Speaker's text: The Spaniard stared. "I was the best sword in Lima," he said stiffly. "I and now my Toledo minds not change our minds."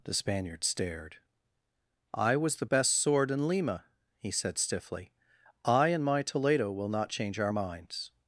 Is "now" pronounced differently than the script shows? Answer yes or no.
yes